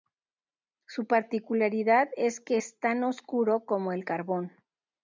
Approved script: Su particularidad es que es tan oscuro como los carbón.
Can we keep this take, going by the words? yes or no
no